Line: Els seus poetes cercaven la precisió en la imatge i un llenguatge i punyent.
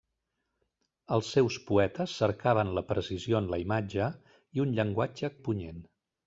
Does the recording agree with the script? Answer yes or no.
yes